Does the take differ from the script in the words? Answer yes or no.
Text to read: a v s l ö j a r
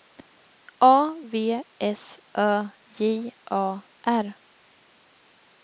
yes